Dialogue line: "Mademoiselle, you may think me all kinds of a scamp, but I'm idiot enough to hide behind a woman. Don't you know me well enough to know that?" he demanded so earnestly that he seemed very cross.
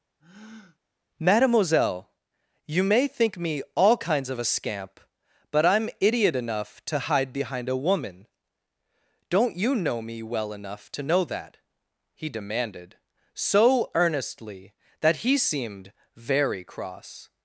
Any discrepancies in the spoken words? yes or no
no